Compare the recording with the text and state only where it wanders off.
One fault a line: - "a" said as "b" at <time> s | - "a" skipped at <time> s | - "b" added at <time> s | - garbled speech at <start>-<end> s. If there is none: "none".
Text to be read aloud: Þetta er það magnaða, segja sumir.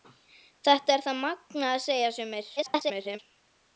- garbled speech at 2.6-3.2 s